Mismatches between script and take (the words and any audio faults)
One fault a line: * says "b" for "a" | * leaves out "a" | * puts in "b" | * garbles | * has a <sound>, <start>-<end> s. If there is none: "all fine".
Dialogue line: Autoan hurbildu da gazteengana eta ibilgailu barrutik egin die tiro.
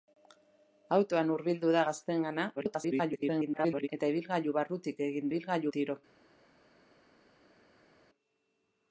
* garbles
* says "ibilgailu" for "die"